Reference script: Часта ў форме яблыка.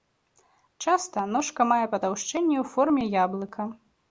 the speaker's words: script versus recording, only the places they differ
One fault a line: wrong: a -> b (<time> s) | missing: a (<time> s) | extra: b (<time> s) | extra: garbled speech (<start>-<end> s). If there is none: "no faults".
extra: ножка мае патаўшчэнне (1.4 s)